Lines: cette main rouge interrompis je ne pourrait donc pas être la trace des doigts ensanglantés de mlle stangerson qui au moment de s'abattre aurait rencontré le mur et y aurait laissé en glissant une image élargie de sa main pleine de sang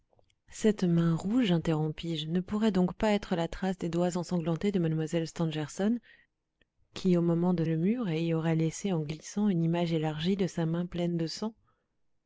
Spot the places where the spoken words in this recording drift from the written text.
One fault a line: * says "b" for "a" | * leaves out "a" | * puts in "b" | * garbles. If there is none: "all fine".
* leaves out "s'abattre aurait rencontré"